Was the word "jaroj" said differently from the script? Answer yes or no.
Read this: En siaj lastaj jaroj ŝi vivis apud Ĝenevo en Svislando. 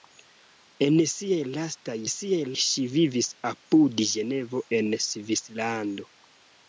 yes